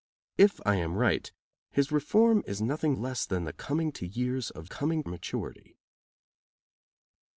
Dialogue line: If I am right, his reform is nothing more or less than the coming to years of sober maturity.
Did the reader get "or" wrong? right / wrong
wrong